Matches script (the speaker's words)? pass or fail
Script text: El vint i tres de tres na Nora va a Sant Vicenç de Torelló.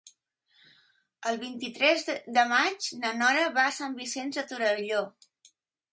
fail